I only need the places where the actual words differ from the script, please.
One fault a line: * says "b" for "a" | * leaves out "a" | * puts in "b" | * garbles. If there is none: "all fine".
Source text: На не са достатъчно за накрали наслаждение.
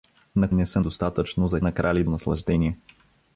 all fine